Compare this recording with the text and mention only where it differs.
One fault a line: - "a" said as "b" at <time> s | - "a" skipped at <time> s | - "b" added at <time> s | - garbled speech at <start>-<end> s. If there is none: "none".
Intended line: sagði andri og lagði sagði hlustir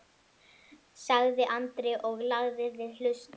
- "sagði" said as "við" at 2.8 s